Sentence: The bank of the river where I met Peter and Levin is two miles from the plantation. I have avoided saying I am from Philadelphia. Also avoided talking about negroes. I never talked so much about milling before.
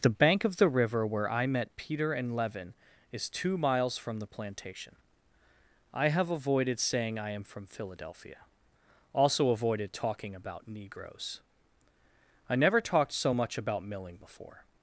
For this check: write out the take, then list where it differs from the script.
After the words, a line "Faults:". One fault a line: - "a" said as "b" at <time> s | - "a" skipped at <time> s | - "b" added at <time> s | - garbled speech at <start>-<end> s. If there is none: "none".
The bank of the river where I met Peter and Levin is two miles from the plantation. I have avoided saying I am from Philadelphia. Also avoided talking about negroes. I never talked so much about milling before.
Faults:
none